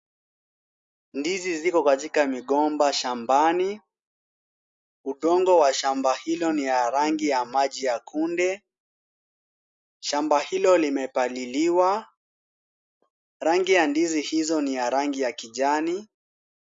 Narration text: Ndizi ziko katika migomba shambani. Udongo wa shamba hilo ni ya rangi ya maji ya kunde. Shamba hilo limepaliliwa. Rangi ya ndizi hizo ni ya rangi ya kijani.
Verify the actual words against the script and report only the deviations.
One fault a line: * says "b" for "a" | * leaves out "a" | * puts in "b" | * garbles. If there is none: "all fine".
all fine